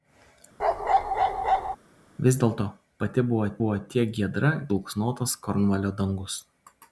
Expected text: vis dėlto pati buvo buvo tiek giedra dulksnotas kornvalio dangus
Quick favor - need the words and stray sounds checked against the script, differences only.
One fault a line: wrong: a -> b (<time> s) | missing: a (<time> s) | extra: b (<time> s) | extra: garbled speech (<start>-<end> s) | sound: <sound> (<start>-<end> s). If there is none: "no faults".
sound: bark (0.6-1.8 s)